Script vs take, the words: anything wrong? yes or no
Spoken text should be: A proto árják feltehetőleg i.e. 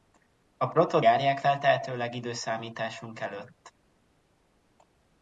no